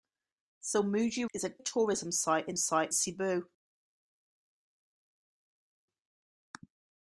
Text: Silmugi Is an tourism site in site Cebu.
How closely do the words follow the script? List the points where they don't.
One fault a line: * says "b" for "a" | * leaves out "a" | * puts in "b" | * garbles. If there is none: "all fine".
all fine